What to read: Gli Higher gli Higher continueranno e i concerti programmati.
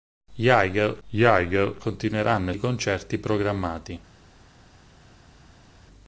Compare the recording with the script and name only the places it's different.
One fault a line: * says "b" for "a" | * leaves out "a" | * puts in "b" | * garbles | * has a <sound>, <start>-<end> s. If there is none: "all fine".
all fine